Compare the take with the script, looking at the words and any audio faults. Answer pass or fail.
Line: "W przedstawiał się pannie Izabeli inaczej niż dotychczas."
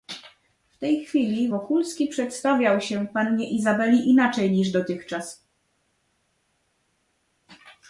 fail